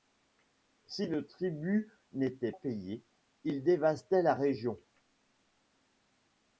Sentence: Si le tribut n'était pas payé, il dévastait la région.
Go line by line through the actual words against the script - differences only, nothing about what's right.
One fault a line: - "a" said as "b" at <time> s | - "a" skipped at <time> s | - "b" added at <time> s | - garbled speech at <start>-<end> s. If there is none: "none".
- "pas" skipped at 2.5 s